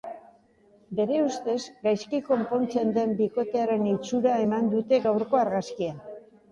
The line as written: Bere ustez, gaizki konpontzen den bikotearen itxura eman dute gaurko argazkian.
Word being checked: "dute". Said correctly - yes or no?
yes